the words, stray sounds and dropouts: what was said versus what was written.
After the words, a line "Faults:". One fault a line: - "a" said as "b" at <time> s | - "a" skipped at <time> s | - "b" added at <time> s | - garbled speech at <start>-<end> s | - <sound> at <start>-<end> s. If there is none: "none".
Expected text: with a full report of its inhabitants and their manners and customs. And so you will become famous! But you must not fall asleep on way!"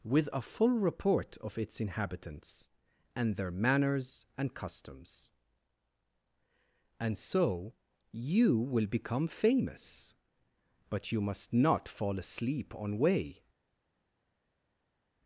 with a full report of its inhabitants and their manners and customs. And so you will become famous! But you must not fall asleep on way!"
Faults:
none